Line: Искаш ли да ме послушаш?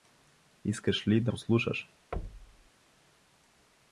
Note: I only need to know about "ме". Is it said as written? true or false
false